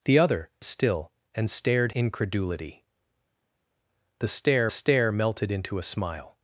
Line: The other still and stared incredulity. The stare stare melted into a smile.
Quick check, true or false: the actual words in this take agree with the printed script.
true